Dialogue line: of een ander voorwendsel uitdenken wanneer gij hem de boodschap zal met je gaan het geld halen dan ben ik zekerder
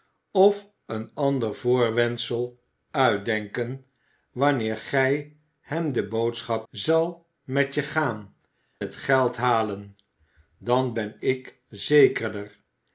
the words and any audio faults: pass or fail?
pass